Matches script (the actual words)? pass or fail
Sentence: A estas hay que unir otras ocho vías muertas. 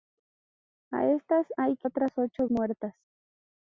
fail